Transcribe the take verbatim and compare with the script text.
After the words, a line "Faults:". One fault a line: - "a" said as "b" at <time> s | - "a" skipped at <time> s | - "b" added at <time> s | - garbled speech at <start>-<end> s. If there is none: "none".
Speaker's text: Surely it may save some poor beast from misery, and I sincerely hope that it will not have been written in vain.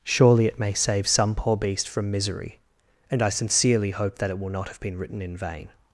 Surely it may save some poor beast from misery, and I sincerely hope that it will not have been written in vain.
Faults:
none